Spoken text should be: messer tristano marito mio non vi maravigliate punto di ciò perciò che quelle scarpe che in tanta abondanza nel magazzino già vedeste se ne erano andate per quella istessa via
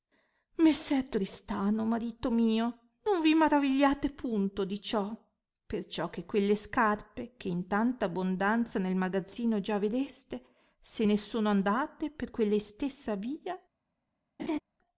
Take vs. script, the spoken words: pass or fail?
fail